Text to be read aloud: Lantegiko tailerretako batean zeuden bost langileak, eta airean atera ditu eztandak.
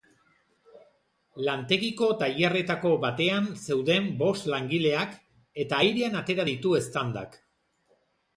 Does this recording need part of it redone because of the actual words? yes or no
no